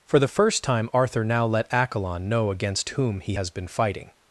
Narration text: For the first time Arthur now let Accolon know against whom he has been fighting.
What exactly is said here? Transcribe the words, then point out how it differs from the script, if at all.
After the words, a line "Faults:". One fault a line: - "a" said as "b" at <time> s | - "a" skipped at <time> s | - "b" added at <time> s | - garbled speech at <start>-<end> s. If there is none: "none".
For the first time Arthur now let Accolon know against whom he has been fighting.
Faults:
none